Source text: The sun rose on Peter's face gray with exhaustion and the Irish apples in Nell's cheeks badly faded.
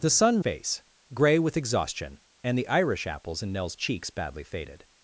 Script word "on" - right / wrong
wrong